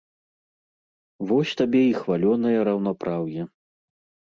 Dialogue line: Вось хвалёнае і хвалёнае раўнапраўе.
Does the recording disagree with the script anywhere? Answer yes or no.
yes